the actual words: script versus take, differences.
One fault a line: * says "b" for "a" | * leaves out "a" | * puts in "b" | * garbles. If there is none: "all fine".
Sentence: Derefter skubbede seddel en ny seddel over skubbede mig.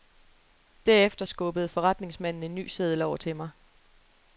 * says "forretningsmanden" for "seddel"
* says "til" for "skubbede"